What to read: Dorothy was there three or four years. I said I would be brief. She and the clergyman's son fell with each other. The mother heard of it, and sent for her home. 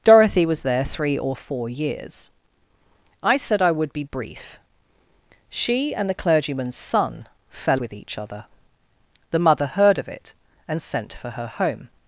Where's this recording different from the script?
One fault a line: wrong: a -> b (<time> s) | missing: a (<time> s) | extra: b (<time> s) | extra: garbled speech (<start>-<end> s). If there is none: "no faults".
no faults